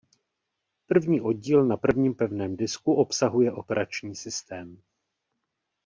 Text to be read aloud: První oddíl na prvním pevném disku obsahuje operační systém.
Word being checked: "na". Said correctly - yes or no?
yes